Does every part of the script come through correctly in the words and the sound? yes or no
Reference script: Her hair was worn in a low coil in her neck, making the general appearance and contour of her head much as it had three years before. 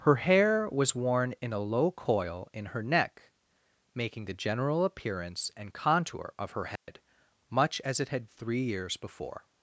no